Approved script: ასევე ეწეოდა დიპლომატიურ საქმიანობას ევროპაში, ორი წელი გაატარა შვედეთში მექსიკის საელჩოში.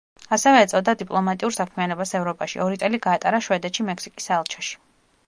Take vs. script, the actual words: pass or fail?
pass